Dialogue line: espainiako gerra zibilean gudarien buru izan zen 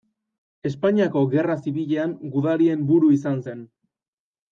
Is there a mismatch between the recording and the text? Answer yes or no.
no